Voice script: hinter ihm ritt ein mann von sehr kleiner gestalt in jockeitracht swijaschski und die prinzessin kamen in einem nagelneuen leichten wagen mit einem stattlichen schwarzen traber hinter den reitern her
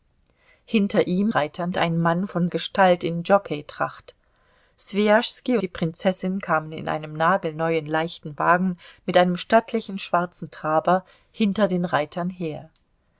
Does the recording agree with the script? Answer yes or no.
no